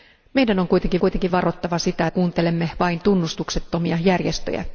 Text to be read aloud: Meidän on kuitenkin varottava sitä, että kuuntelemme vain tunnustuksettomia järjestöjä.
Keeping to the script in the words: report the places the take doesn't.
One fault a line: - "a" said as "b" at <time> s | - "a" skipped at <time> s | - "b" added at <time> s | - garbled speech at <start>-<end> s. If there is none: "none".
- "kuitenkin" added at 1.0 s
- "että" skipped at 2.1 s